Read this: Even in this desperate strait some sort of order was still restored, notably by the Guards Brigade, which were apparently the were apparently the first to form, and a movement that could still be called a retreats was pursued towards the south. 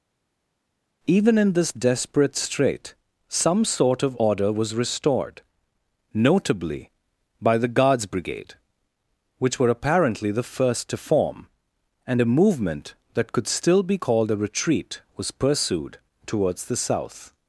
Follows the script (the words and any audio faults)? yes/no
no